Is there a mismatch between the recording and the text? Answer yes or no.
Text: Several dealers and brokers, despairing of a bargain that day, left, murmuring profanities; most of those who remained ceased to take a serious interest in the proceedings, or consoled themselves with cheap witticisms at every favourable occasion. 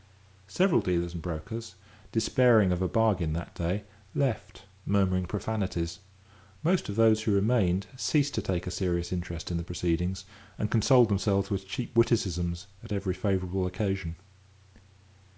yes